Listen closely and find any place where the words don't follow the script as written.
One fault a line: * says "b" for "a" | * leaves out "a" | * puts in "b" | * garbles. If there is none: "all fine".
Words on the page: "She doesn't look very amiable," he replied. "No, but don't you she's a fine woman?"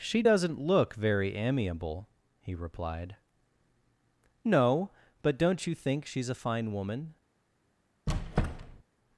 * puts in "think"